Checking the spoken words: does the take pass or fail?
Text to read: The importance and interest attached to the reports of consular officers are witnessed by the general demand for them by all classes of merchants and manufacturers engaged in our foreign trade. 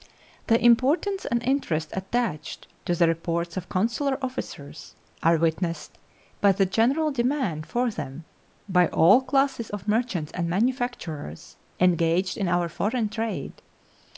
pass